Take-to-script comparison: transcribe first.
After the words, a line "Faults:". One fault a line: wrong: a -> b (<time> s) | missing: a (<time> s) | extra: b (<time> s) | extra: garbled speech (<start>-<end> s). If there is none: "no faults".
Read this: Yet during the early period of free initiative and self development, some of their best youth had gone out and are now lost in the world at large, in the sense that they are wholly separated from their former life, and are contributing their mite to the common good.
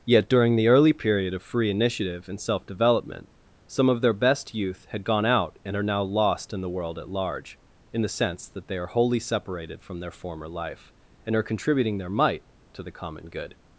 Yet during the early period of free initiative and self development, some of their best youth had gone out and are now lost in the world at large, in the sense that they are wholly separated from their former life, and are contributing their mite to the common good.
Faults:
no faults